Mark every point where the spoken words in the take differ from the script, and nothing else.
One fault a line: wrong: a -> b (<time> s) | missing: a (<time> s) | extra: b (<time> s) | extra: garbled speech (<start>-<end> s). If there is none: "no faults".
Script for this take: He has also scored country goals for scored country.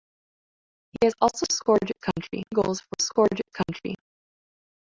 no faults